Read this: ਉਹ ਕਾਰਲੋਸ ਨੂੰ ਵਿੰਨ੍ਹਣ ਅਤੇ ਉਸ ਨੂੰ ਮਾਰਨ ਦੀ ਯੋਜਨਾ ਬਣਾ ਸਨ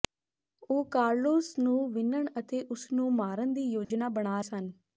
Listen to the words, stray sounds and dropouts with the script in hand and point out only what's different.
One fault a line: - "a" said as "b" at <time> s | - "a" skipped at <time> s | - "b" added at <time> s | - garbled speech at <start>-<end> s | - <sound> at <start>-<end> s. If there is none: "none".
- dropout at 3.8-3.9 s